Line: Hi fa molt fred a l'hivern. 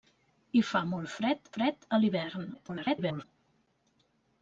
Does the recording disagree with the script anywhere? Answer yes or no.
yes